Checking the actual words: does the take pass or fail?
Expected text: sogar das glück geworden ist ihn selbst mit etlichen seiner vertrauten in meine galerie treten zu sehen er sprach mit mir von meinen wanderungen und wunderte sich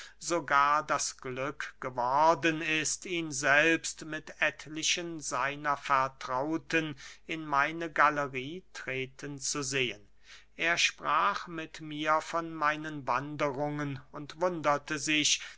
pass